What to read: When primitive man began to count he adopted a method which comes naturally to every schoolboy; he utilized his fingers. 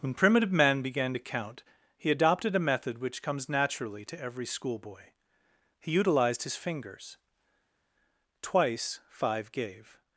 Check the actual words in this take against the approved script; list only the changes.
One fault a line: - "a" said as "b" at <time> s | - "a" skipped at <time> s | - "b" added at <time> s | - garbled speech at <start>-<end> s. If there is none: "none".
- "Twice five gave" added at 8.4 s